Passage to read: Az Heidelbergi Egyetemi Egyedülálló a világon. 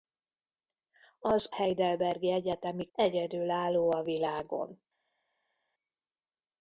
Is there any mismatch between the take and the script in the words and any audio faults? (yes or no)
no